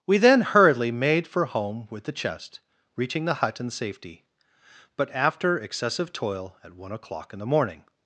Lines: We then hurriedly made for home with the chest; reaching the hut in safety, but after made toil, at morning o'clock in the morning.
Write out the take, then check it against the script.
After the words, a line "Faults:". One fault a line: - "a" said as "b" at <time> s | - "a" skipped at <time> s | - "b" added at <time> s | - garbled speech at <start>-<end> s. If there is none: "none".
We then hurriedly made for home with the chest; reaching the hut in safety, but after excessive toil, at one o'clock in the morning.
Faults:
- "made" said as "excessive" at 5.6 s
- "morning" said as "one" at 6.7 s